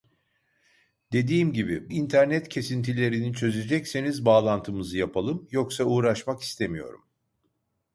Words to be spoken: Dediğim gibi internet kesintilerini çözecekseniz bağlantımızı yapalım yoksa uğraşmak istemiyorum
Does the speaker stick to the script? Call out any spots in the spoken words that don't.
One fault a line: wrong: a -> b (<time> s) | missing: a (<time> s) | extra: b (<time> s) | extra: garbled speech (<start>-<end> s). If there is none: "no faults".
no faults